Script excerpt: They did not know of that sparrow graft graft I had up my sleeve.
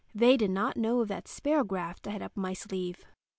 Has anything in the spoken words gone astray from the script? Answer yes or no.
yes